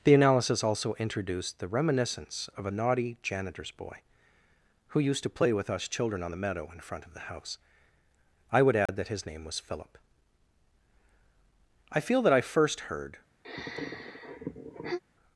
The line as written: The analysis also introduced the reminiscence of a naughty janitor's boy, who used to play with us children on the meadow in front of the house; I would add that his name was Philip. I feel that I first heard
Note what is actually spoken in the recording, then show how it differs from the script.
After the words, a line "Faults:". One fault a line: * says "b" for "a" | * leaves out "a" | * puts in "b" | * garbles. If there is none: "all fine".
The analysis also introduced the reminiscence of a naughty janitor's boy, who used to play with us children on the meadow in front of the house; I would add that his name was Philip. I feel that I first heard
Faults:
all fine